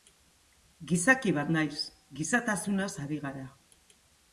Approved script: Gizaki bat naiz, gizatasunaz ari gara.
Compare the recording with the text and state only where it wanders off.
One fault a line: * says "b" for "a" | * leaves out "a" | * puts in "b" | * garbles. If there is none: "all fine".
all fine